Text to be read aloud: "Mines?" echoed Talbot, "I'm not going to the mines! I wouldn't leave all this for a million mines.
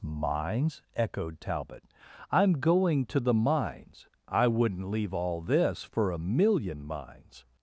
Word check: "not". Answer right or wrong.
wrong